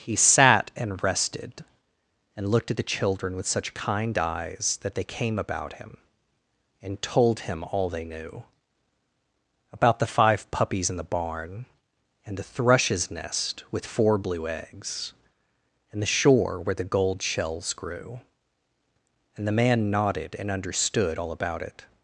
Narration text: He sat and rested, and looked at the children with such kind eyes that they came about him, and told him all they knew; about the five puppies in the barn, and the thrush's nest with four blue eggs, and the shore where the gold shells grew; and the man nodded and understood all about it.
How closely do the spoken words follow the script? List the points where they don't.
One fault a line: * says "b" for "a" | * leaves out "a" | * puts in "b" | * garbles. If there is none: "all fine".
all fine